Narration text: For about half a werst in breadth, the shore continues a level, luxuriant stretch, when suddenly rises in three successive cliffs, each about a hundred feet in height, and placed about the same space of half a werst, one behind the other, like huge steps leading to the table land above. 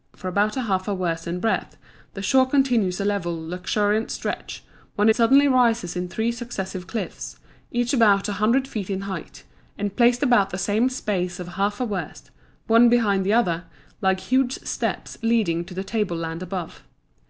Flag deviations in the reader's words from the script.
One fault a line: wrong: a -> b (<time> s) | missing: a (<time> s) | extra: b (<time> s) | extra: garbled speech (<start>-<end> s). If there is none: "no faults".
no faults